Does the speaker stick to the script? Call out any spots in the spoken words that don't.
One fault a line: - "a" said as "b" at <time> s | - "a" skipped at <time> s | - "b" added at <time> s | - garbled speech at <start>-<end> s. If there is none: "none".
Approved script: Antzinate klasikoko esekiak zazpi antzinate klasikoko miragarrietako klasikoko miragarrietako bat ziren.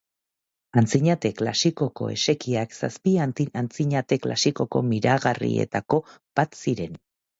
- "klasikoko miragarrietako" skipped at 6.0 s